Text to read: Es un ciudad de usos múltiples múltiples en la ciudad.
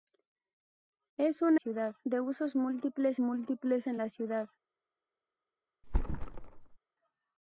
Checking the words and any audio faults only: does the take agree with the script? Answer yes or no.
no